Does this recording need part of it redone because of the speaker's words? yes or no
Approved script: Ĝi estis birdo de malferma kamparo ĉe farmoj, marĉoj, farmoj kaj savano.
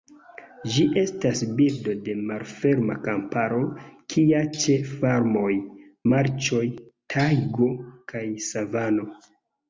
yes